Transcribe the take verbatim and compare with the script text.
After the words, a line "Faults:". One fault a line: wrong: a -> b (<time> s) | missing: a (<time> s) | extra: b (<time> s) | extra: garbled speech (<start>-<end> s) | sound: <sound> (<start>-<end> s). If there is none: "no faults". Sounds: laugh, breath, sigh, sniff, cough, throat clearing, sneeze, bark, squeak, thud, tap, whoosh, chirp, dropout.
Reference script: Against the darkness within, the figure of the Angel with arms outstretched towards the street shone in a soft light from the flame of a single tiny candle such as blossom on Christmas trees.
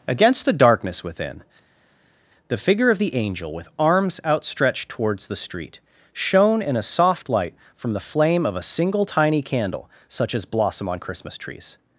Against the darkness within, the figure of the Angel with arms outstretched towards the street shone in a soft light from the flame of a single tiny candle such as blossom on Christmas trees.
Faults:
no faults